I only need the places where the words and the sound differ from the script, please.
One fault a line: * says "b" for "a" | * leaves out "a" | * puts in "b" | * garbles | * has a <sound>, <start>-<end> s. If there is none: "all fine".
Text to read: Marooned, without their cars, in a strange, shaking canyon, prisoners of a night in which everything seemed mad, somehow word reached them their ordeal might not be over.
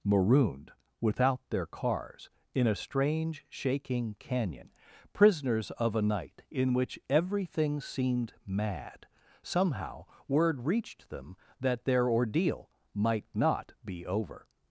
* puts in "that"